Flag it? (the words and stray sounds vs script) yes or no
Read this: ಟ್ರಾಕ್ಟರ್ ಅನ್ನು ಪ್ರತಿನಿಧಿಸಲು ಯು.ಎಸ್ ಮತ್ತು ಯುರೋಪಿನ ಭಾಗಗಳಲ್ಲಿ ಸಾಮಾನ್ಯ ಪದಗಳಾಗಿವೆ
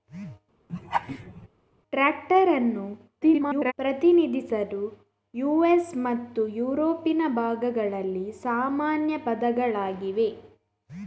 yes